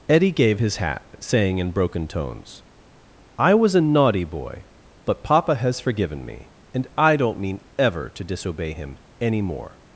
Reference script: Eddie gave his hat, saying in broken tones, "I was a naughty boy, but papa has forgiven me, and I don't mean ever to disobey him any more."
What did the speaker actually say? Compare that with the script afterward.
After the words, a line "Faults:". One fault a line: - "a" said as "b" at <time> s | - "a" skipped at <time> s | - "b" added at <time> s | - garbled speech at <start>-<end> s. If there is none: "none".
Eddie gave his hat, saying in broken tones, "I was a naughty boy, but papa has forgiven me, and I don't mean ever to disobey him any more."
Faults:
none